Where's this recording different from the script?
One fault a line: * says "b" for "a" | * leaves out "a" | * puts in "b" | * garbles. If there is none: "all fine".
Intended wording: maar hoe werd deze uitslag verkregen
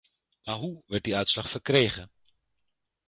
* says "die" for "deze"